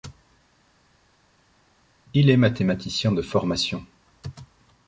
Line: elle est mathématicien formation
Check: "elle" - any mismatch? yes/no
yes